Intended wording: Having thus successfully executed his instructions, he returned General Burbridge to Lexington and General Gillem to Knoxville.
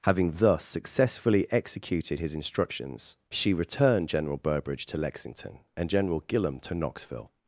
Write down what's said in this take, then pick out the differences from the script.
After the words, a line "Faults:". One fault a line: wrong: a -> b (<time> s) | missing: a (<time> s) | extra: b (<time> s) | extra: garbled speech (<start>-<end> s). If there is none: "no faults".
Having thus successfully executed his instructions, she returned General Burbridge to Lexington and General Gillem to Knoxville.
Faults:
wrong: he -> she (3.3 s)